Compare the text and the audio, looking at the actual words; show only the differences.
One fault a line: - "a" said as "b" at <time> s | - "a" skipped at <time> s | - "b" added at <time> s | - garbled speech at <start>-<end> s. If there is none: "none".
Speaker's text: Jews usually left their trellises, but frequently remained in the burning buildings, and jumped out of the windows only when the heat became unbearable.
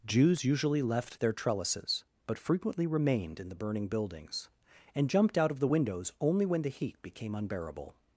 none